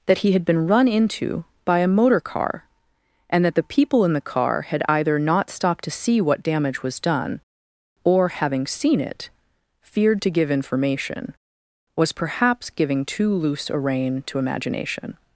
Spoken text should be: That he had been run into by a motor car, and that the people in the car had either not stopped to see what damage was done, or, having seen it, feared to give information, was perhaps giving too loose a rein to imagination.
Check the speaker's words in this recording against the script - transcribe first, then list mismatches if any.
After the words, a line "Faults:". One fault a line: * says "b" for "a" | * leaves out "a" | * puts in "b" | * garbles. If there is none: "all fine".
That he had been run into by a motor car, and that the people in the car had either not stopped to see what damage was done, or, having seen it, feared to give information, was perhaps giving too loose a rein to imagination.
Faults:
all fine